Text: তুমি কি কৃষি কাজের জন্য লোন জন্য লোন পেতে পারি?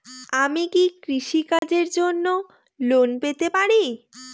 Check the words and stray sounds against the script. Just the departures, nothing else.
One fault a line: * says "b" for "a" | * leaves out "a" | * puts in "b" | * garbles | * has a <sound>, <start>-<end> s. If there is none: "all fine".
* says "আমি" for "তুমি"
* has a dropout, 1.6-1.6 s
* leaves out "জন্য লোন"